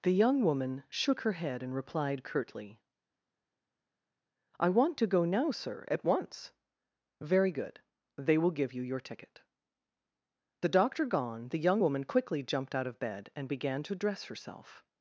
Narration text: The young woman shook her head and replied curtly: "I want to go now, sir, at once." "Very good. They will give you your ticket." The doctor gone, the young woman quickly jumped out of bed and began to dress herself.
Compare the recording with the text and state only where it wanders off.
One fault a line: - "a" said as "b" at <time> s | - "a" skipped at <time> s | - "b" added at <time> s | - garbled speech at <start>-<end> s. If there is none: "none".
none